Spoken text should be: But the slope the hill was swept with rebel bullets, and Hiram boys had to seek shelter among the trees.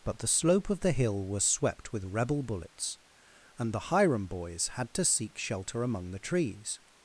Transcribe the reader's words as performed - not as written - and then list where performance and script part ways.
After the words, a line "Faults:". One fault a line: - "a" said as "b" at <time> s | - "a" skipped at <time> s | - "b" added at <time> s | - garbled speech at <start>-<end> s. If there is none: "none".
But the slope of the hill was swept with rebel bullets, and the Hiram boys had to seek shelter among the trees.
Faults:
- "of" added at 0.7 s
- "the" added at 3.7 s